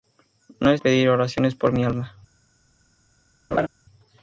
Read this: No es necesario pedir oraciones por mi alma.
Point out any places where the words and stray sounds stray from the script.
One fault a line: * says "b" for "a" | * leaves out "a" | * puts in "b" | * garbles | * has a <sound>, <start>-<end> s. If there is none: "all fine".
* leaves out "necesario"
* has a laugh, 3.5-3.7 s